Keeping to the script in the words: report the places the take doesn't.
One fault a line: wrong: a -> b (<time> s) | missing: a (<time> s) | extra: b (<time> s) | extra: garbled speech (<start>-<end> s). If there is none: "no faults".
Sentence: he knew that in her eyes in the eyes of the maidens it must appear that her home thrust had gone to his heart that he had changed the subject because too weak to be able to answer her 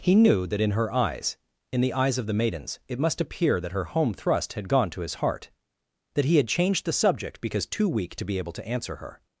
no faults